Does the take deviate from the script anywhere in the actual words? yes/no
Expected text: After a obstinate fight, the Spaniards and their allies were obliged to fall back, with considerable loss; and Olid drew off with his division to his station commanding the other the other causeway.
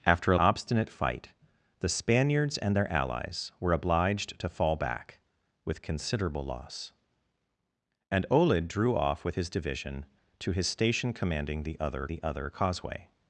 no